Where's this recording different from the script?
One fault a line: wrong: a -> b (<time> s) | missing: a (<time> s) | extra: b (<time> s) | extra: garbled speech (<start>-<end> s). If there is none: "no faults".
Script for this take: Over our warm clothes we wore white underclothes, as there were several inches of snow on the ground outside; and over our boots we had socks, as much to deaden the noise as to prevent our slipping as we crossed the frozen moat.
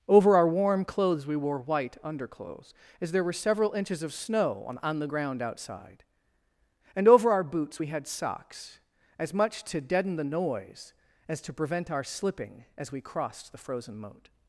extra: on (4.8 s)